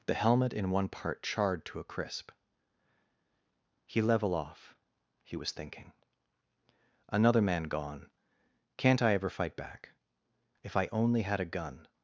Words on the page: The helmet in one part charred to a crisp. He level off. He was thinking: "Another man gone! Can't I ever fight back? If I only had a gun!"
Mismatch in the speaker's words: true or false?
false